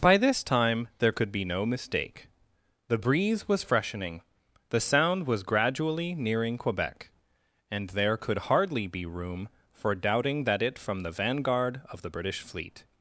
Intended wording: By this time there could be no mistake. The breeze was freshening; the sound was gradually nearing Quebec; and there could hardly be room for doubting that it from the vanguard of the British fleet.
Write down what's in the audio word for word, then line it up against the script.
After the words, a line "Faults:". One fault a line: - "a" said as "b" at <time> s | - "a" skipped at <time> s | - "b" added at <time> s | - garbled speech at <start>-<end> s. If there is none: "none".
By this time there could be no mistake. The breeze was freshening; the sound was gradually nearing Quebec; and there could hardly be room for doubting that it from the vanguard of the British fleet.
Faults:
none